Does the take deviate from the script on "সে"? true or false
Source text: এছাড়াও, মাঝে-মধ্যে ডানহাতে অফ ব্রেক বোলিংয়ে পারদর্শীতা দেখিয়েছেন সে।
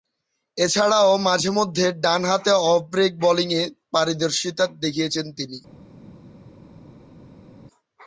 true